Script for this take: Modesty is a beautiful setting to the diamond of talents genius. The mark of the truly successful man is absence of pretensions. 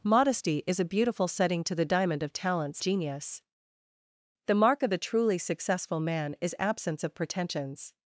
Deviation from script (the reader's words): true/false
false